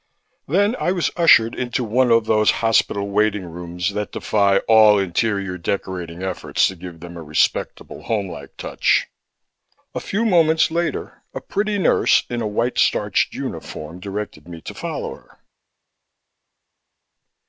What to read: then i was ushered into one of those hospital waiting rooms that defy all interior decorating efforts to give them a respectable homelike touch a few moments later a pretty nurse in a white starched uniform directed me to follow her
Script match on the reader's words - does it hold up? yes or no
yes